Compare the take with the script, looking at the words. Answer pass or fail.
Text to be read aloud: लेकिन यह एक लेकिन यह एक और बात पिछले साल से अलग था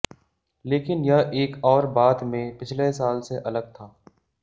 fail